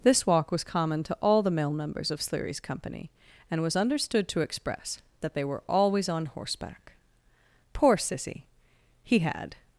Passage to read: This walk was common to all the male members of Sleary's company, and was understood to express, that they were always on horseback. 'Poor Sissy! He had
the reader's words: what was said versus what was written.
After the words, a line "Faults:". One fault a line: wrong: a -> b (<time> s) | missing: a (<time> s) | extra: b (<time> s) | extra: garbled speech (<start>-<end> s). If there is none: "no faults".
This walk was common to all the male members of Sleary's company, and was understood to express, that they were always on horseback. 'Poor Sissy! He had
Faults:
no faults